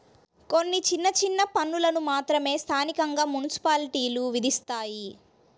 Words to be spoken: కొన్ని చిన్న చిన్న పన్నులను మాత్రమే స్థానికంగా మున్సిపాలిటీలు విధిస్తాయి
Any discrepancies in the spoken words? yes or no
no